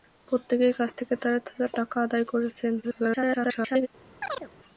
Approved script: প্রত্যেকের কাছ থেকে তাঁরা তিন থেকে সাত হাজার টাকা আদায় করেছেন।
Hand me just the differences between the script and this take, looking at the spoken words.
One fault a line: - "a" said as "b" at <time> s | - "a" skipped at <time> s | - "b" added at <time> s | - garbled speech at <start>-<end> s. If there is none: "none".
- "তিন থেকে সাত" skipped at 1.4 s
- garbled speech at 2.8-3.9 s